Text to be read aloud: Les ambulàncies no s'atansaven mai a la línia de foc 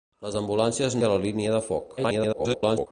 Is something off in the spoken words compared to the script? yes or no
yes